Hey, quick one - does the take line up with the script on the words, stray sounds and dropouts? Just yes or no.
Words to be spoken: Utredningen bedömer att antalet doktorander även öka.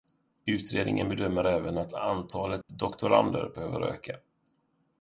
no